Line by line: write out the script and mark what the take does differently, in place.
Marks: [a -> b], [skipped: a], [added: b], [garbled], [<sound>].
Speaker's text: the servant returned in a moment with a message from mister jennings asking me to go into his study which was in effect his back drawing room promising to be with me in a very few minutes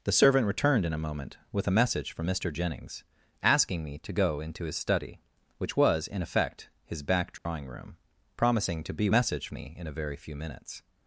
the servant returned in a moment with a message from mister jennings asking me to go into his study which was in effect his back drawing [dropout] room promising to be [with -> message] me in a very few minutes